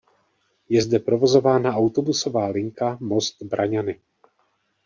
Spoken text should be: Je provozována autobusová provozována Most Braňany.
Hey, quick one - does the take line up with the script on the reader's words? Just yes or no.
no